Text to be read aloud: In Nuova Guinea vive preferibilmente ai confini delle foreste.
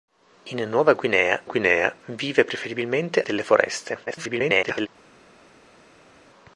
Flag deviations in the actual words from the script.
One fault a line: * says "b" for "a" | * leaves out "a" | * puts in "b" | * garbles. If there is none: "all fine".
* puts in "Guinea"
* leaves out "ai confini"
* garbles